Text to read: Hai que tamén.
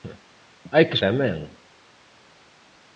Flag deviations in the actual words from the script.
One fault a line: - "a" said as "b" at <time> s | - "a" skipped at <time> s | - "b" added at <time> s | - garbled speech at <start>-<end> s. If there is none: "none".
none